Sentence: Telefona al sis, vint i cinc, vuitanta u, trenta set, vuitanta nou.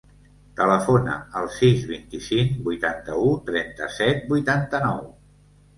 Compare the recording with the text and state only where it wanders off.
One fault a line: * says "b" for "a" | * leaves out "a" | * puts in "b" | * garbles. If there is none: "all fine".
all fine